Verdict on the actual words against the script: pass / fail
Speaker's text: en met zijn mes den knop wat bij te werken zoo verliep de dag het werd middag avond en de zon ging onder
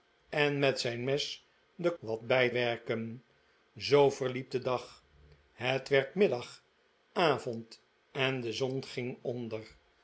fail